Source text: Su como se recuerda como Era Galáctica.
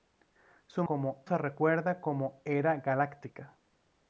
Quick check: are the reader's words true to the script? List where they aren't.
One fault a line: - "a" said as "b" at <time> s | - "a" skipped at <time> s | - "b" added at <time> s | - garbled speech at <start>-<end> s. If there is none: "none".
none